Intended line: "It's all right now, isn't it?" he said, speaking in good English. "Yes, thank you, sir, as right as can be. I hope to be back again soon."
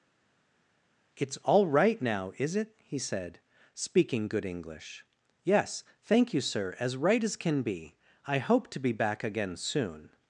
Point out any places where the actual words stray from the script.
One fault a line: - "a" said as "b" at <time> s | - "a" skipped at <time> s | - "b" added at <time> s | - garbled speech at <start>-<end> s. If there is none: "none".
- "isn't" said as "is" at 2.4 s
- "in" skipped at 4.3 s